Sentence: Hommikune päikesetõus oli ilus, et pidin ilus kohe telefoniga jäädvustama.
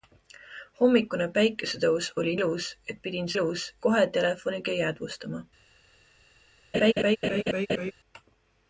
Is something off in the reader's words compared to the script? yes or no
no